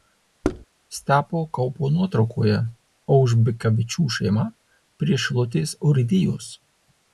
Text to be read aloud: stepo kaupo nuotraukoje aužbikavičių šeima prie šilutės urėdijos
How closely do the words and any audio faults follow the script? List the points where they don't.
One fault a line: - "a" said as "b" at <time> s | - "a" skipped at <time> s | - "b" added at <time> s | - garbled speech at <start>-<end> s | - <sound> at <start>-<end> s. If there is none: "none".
- thud at 0.4-0.7 s